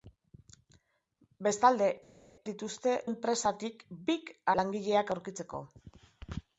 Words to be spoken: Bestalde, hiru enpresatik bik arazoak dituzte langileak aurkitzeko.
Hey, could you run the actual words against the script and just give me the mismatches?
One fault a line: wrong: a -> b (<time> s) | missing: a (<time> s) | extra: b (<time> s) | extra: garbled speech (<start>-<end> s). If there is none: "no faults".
wrong: hiru -> dituzte (2.5 s)
missing: arazoak dituzte (4.3 s)